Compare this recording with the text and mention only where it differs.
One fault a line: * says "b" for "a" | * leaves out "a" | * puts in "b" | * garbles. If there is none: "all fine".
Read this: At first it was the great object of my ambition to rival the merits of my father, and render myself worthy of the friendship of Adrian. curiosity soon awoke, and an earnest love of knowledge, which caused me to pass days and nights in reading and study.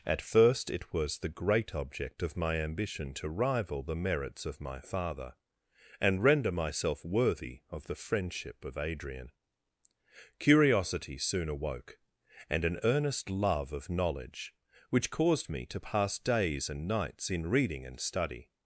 all fine